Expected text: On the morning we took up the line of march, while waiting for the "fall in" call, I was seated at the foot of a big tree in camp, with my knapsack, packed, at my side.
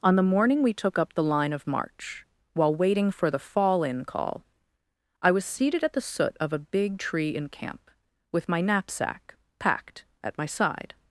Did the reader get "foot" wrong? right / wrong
wrong